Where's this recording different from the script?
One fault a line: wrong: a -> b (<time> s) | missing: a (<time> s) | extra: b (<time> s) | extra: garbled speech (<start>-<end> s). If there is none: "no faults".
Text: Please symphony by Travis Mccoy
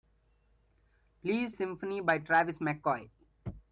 no faults